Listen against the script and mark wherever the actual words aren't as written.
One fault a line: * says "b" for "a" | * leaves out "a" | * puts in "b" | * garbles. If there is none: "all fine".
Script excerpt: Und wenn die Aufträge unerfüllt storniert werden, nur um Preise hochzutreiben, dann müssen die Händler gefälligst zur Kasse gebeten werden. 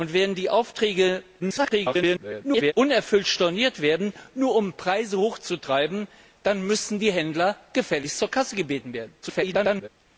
* garbles
* garbles